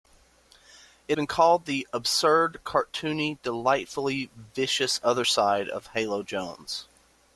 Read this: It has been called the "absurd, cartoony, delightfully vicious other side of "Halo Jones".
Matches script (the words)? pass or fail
fail